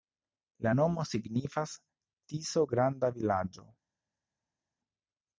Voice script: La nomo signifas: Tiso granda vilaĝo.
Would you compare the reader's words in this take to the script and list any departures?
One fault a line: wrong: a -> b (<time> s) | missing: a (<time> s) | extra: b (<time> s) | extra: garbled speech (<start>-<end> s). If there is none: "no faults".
no faults